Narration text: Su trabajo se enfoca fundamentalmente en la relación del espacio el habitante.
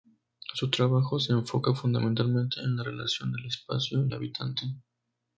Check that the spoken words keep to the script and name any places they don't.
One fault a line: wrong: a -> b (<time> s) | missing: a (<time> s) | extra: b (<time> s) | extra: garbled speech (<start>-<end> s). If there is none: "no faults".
no faults